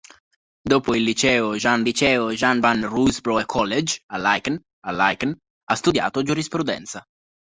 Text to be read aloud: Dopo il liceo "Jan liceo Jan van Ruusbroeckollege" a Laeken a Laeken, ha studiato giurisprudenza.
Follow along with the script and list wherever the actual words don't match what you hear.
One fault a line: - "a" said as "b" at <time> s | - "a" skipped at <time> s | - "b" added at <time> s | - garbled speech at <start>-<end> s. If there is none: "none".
none